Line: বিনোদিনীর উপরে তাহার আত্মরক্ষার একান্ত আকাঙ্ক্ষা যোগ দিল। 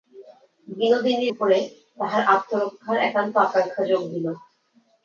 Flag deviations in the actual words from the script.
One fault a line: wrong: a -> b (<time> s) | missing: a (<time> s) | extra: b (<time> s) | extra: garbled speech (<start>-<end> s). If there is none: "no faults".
no faults